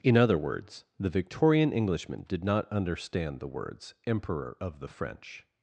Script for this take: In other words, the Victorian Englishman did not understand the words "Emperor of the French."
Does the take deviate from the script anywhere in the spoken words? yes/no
no